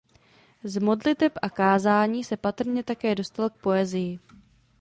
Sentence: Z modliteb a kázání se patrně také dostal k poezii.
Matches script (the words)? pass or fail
pass